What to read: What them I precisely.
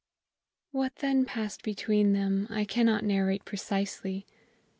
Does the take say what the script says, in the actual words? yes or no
no